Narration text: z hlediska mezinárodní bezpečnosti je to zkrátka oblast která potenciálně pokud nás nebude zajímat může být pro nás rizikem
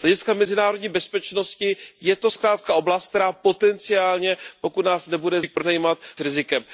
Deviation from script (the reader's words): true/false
true